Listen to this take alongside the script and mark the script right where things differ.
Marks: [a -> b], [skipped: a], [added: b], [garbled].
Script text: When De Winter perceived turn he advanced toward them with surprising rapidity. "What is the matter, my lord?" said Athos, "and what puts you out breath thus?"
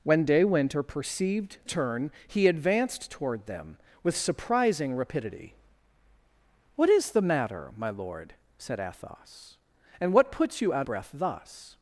When De Winter perceived turn he advanced toward them with surprising rapidity. "What is the matter, my lord?" said Athos, "and what puts you out breath thus?"